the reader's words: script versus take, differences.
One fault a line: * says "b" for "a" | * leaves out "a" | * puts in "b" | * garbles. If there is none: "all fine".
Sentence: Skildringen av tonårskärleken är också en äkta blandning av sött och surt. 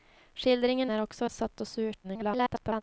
* leaves out "av tonårskärleken"
* leaves out "en äkta blandning"
* garbles